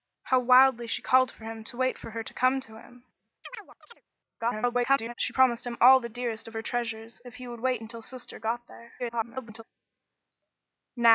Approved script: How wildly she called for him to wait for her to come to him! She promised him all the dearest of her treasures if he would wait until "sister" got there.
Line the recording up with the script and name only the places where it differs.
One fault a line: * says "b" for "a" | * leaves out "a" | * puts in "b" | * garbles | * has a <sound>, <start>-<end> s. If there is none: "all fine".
* has a chirp, 3.4-4.0 s
* garbles
* garbles